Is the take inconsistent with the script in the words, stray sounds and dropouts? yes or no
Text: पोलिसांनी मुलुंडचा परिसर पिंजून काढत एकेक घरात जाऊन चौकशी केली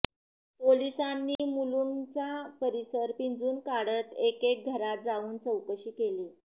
yes